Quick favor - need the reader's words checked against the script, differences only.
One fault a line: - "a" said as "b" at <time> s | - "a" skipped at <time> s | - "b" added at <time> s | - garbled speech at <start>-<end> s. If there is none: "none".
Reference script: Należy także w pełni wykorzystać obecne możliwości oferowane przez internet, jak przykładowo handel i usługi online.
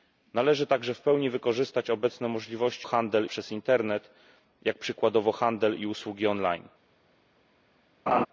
- "oferowane" said as "handel" at 2.8 s